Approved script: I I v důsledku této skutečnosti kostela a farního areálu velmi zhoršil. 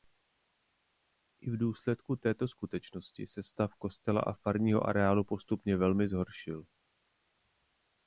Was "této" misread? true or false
false